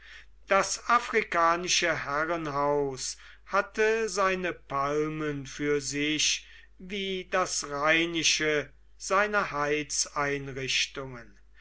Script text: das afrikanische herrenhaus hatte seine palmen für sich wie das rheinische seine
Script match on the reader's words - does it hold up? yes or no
yes